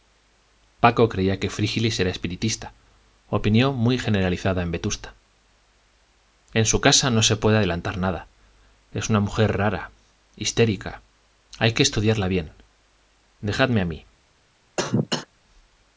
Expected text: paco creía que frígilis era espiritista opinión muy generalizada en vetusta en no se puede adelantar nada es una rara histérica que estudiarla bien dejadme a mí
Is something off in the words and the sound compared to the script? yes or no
yes